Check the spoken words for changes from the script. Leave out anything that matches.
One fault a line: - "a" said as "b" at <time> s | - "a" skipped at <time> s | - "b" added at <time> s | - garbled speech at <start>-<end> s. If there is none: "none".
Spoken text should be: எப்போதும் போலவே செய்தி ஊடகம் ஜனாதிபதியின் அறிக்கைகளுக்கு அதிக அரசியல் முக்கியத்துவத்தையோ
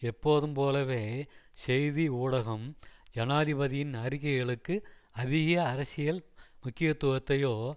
none